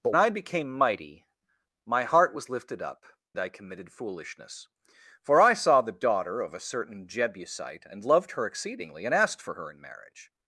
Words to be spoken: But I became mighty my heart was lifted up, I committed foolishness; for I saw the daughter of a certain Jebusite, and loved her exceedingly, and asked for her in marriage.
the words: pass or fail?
pass